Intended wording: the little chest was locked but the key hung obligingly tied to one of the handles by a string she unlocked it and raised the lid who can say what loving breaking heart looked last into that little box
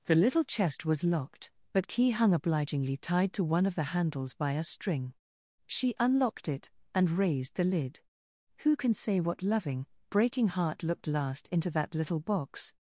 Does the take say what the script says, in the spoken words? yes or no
no